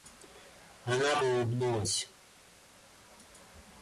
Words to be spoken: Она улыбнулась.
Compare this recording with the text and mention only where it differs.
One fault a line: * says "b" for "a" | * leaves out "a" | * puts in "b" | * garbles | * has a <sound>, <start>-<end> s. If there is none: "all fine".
all fine